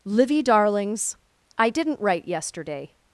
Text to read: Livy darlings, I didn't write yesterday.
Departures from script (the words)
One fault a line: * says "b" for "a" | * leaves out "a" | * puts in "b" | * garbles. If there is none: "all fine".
all fine